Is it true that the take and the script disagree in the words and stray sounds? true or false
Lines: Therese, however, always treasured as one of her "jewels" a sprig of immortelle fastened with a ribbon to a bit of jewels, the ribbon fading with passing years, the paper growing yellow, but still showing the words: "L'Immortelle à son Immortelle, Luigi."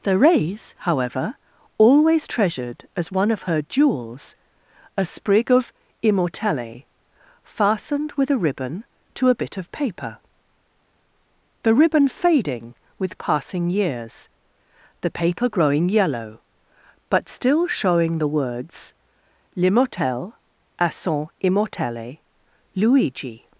true